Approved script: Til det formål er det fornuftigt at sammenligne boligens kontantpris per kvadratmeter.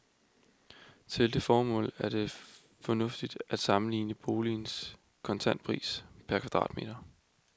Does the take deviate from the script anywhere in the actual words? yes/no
no